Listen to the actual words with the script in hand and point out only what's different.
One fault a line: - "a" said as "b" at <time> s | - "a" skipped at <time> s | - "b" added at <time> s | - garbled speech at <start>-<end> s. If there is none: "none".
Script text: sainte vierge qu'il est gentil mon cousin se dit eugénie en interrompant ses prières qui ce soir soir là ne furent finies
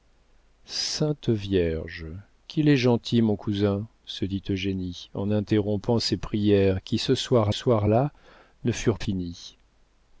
none